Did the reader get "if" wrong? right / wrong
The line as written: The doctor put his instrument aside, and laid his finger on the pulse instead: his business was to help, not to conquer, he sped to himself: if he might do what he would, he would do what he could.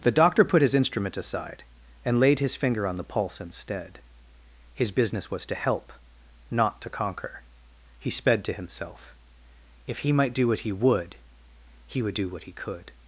right